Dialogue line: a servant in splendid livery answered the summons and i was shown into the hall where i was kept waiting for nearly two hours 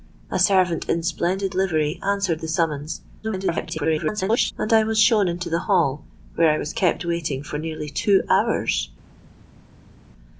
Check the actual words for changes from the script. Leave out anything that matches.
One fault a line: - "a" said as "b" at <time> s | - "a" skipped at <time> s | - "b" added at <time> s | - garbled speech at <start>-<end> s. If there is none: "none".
- garbled speech at 3.2-4.5 s